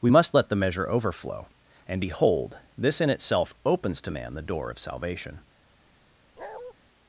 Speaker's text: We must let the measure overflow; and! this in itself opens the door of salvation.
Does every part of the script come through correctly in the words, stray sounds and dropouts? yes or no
no